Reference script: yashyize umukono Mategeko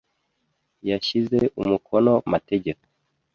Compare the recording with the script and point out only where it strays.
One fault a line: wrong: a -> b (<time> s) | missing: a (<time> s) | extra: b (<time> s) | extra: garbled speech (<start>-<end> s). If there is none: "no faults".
no faults